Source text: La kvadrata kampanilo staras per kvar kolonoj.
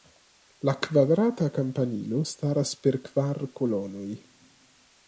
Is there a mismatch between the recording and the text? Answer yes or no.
no